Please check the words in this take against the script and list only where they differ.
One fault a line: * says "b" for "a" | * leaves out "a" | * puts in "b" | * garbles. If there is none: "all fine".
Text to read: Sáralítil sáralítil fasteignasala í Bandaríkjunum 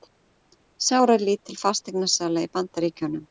* leaves out "sáralítil"